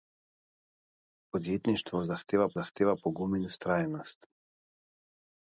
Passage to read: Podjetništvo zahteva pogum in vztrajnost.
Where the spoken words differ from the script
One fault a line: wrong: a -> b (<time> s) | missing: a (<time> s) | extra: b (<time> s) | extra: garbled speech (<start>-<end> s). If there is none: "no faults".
extra: zahteva (2.6 s)